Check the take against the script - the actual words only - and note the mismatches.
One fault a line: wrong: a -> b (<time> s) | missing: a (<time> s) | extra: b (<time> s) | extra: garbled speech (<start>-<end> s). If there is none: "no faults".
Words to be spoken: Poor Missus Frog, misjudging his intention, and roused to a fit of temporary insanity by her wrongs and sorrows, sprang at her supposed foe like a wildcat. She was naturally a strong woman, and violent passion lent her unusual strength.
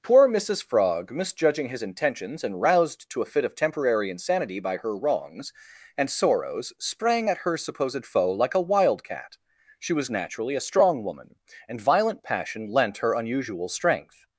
wrong: intention -> intentions (1.8 s)